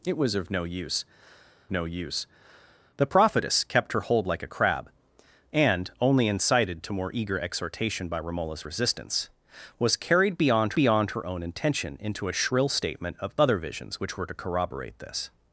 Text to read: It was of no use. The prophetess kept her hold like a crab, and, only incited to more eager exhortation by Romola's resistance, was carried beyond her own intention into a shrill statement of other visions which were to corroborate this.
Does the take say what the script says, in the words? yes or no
no